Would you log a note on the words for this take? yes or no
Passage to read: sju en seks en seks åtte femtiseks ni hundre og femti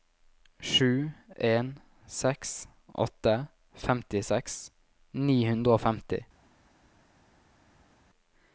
yes